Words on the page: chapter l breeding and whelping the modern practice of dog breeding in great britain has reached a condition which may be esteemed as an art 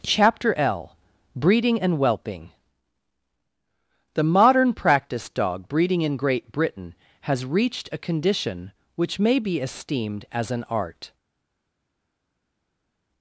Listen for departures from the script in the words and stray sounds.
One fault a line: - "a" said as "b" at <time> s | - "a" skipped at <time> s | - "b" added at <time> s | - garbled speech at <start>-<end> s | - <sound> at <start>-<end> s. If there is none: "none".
- "of" skipped at 5.3 s